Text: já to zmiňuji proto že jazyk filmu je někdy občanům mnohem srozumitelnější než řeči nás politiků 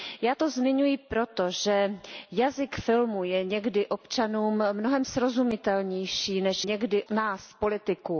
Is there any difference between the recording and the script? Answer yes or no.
yes